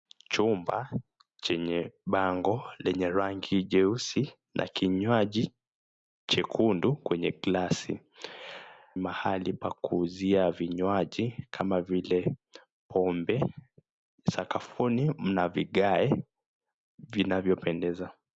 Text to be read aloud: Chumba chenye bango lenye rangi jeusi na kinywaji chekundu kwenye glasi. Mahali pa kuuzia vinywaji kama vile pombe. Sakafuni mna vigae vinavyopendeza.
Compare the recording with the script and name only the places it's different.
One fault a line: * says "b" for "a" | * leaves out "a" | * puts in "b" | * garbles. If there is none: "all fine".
all fine